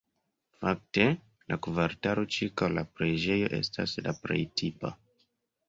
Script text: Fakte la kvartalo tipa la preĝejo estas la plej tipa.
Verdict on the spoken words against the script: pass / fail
fail